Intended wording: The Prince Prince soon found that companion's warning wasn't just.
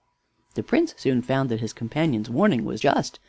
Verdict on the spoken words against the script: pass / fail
fail